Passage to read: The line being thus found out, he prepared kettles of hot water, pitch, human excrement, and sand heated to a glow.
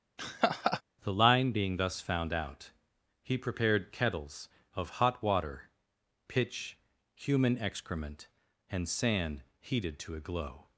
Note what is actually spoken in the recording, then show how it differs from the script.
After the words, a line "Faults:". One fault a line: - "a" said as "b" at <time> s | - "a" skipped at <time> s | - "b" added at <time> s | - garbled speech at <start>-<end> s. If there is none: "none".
The line being thus found out, he prepared kettles of hot water, pitch, human excrement, and sand heated to a glow.
Faults:
none